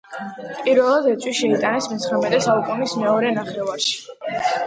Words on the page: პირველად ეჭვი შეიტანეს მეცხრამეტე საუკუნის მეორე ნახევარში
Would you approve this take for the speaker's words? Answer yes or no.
yes